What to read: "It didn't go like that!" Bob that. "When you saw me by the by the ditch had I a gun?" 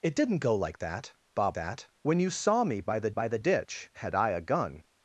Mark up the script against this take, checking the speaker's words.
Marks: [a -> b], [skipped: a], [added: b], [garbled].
"It didn't go like that!" Bob that. "When you saw me by the by the ditch had I a gun?"